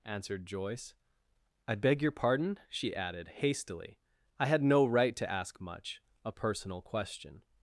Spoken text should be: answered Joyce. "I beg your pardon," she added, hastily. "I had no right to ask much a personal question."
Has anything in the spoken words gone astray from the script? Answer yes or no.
no